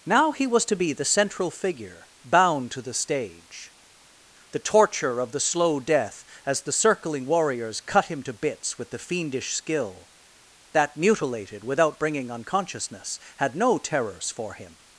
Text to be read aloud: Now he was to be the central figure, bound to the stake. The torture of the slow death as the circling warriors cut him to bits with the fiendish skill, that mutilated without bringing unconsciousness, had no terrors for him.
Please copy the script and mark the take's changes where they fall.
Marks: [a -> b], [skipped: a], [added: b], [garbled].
Now he was to be the central figure, bound to the [stake. -> stage] The torture of the slow death as the circling warriors cut him to bits with the fiendish skill, that mutilated without bringing unconsciousness, had no terrors for him.